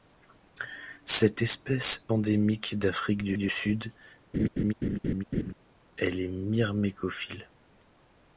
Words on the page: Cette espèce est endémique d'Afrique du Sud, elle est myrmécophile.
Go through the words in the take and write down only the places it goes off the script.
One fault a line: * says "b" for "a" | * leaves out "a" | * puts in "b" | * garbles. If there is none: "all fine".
* leaves out "est"
* puts in "du"